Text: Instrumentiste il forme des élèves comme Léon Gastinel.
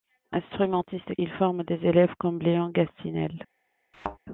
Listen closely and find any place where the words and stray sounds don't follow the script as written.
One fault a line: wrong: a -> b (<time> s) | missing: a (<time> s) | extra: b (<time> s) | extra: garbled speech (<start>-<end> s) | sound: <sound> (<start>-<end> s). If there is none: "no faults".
sound: thud (3.9-4.2 s)